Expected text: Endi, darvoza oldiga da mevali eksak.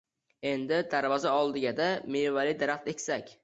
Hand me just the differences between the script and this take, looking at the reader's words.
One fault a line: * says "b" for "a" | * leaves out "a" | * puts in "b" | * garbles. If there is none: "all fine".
* puts in "daraxt"